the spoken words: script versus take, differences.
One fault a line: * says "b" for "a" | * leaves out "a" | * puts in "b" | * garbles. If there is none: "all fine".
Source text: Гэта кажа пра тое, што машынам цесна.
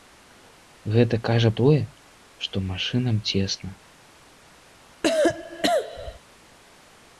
* leaves out "пра"